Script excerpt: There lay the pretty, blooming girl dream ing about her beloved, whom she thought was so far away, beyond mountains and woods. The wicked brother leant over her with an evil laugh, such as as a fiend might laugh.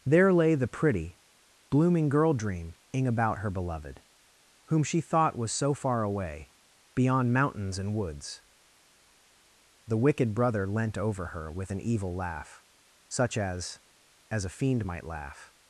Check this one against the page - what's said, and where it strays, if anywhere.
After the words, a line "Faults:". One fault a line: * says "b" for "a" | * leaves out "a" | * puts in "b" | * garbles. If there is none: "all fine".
There lay the pretty, blooming girl dream ing about her beloved, whom she thought was so far away, beyond mountains and woods. The wicked brother leant over her with an evil laugh, such as as a fiend might laugh.
Faults:
all fine